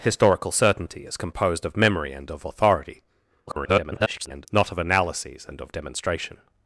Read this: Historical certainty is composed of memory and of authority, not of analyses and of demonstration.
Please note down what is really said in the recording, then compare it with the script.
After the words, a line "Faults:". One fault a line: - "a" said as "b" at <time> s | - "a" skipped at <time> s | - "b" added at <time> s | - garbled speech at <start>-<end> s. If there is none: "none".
Historical certainty is composed of memory and of authority, [garbled] not of analyses and of demonstration.
Faults:
- garbled speech at 3.5-4.5 s